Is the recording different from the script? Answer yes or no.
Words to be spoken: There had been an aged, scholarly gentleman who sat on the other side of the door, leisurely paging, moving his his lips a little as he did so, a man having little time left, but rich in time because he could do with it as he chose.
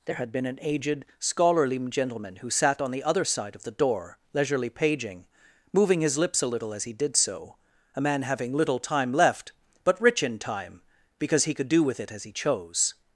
yes